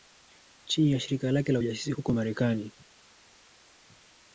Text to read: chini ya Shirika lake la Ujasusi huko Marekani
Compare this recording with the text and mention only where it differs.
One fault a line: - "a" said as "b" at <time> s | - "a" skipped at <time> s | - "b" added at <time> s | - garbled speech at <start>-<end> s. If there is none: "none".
none